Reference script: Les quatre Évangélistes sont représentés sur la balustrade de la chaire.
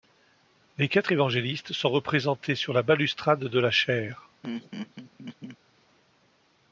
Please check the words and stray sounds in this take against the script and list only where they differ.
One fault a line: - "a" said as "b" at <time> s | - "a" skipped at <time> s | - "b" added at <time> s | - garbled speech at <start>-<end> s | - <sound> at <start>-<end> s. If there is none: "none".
- laugh at 4.4-5.6 s